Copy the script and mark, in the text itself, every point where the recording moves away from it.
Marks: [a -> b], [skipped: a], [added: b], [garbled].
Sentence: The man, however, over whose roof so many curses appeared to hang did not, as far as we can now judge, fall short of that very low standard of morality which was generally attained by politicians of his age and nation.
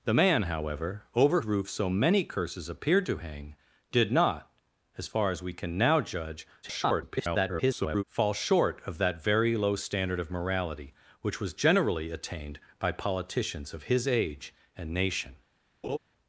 The man, however, over [skipped: whose] roof so many curses appeared to hang did not, as far as we can now judge, [garbled] fall short of that very low standard of morality which was generally attained by politicians of his age and nation.